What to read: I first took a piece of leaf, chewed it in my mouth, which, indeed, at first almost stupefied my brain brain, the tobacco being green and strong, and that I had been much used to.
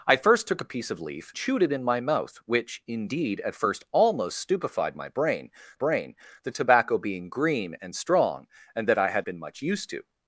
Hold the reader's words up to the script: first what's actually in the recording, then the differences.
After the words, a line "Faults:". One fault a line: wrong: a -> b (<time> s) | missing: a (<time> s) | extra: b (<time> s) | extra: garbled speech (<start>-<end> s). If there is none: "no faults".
I first took a piece of leaf, chewed it in my mouth, which, indeed, at first almost stupefied my brain brain, the tobacco being green and strong, and that I had been much used to.
Faults:
no faults